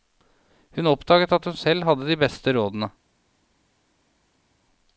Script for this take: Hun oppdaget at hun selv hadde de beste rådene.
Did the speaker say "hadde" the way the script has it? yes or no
yes